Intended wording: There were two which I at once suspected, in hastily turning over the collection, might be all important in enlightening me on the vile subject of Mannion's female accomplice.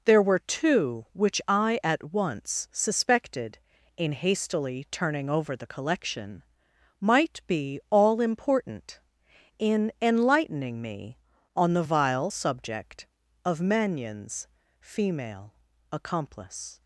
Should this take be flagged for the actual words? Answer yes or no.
no